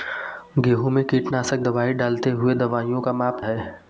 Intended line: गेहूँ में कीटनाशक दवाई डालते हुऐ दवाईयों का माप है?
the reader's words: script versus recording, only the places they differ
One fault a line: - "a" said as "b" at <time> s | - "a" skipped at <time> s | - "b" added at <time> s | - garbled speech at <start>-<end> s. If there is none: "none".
none